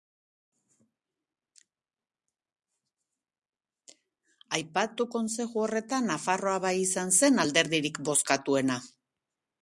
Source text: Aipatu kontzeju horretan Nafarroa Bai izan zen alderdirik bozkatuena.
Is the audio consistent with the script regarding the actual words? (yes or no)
yes